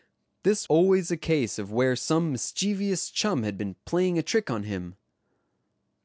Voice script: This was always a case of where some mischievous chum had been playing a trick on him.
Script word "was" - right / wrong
wrong